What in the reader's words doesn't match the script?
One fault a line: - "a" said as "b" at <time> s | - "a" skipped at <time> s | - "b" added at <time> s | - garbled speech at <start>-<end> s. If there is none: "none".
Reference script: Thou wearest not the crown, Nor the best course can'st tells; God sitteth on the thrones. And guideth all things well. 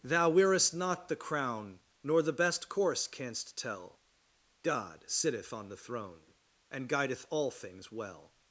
- "tells" said as "tell" at 3.5 s
- "thrones" said as "throne" at 5.8 s